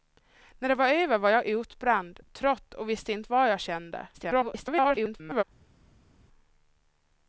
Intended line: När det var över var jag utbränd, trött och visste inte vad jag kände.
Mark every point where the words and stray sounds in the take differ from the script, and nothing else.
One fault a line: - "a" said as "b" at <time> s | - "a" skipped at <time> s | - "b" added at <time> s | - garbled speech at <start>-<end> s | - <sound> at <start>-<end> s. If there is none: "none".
- garbled speech at 4.1-5.4 s